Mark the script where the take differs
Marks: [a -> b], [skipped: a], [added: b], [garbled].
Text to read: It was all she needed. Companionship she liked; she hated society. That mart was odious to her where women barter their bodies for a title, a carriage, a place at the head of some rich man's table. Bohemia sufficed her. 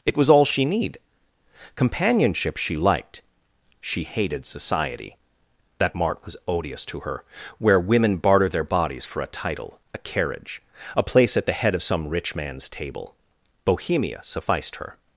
It was all she [needed. -> need] Companionship she liked; she hated society. That mart was odious to her where women barter their bodies for a title, a carriage, a place at the head of some rich man's table. Bohemia sufficed her.